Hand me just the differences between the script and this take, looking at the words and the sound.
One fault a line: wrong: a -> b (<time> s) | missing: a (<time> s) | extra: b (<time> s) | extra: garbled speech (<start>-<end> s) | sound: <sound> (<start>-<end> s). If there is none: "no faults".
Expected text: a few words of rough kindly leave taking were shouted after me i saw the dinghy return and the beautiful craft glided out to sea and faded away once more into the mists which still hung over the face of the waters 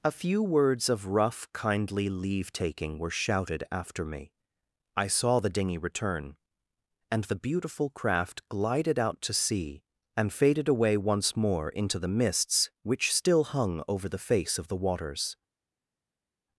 no faults